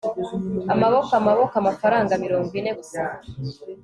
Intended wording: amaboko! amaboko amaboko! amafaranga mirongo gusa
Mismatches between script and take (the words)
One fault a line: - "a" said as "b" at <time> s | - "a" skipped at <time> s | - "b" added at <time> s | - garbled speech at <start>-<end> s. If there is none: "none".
- "amaboko" skipped at 1.5 s
- "ine" added at 2.6 s